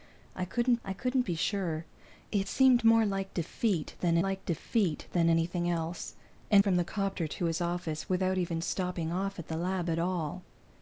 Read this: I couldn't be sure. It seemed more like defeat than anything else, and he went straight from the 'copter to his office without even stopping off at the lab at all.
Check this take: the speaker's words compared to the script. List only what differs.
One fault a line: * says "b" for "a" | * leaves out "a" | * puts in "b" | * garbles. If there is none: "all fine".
* puts in "I couldn't"
* puts in "like defeat than"
* leaves out "he went straight"